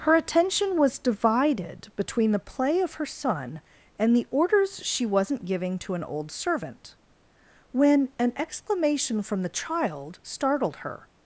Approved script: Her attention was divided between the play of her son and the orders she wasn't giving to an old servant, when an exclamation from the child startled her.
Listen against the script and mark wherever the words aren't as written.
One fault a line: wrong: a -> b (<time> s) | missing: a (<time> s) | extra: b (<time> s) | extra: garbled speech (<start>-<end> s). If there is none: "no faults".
no faults